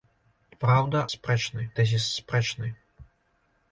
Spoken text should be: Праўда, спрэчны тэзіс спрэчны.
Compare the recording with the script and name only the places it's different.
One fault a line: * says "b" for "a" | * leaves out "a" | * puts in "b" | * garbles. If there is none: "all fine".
all fine